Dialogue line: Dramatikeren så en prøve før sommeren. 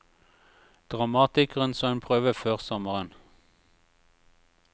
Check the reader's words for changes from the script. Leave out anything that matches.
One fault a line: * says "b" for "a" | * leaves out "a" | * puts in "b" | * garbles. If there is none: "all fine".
all fine